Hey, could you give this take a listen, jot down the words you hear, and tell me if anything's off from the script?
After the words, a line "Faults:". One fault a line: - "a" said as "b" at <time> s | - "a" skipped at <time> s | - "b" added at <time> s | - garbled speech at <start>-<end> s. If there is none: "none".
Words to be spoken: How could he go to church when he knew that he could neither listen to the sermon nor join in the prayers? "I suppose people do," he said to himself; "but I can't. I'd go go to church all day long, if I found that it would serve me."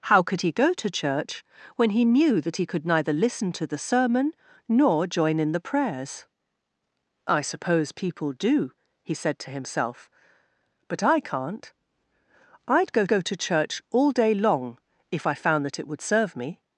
How could he go to church when he knew that he could neither listen to the sermon nor join in the prayers? "I suppose people do," he said to himself; "but I can't. I'd go go to church all day long, if I found that it would serve me."
Faults:
none